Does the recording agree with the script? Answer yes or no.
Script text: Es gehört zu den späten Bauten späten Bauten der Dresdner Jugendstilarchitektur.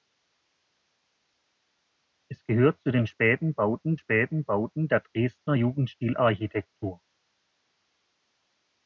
yes